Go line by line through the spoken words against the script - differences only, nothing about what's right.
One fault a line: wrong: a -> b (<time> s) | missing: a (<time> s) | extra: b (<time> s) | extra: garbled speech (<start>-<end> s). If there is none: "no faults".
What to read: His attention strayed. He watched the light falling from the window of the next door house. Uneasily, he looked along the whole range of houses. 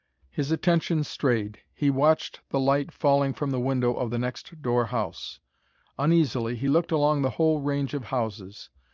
no faults